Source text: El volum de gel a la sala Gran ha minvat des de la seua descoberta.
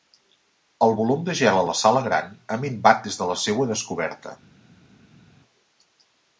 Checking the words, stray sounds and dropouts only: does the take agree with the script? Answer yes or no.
yes